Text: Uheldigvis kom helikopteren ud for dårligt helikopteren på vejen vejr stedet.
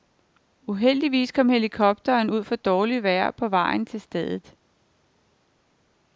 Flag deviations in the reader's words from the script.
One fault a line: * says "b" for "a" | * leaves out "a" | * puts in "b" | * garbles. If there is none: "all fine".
* says "vejr" for "helikopteren"
* says "til" for "vejr"